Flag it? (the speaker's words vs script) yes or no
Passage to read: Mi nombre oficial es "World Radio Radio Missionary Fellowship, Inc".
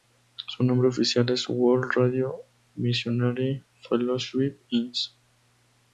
yes